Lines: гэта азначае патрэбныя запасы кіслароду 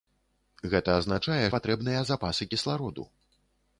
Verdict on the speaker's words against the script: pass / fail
pass